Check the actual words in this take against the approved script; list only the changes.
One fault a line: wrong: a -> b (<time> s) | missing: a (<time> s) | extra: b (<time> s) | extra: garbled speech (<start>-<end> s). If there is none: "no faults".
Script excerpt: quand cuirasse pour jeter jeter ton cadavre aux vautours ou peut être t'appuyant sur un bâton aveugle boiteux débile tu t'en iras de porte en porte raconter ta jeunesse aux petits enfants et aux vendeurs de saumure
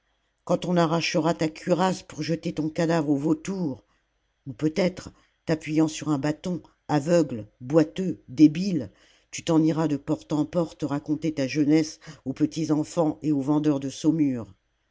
extra: on arrachera ta (0.7 s)
missing: jeter (2.5 s)